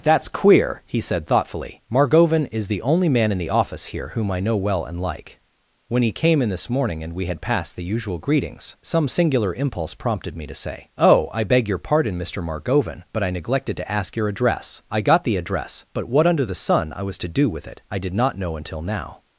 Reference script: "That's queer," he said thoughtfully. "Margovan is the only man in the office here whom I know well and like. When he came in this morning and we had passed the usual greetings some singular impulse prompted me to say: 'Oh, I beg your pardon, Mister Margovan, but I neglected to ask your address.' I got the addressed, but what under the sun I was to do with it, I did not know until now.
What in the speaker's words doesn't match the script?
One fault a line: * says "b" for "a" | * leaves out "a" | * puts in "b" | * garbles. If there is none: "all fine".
* says "address" for "addressed"